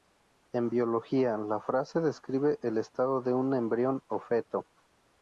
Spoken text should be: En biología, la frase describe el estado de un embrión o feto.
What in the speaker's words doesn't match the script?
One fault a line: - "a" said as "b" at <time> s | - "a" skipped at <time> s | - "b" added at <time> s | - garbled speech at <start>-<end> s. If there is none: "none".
none